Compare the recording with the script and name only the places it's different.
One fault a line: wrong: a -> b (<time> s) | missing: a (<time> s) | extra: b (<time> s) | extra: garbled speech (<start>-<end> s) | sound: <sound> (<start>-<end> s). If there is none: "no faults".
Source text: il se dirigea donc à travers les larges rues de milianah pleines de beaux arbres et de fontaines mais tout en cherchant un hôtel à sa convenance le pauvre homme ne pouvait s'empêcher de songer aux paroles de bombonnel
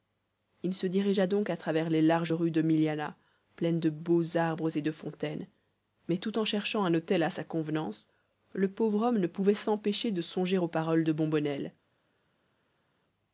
no faults